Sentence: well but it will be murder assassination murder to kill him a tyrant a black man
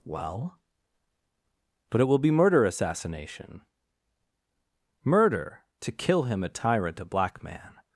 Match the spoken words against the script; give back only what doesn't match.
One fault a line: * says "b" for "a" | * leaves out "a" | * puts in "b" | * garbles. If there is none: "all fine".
all fine